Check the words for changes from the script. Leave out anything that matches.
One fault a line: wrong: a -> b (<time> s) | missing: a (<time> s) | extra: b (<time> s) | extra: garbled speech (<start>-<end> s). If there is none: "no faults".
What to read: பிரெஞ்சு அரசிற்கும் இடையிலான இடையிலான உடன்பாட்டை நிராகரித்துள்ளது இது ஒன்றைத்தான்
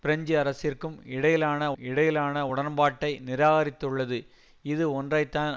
no faults